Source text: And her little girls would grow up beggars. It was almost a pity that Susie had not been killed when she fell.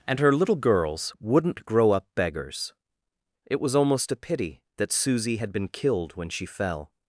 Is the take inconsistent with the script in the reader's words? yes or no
yes